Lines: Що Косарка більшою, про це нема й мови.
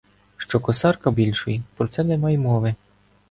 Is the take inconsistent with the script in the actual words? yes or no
no